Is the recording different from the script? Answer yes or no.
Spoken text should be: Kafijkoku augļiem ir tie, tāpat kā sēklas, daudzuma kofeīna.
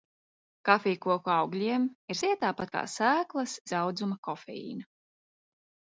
no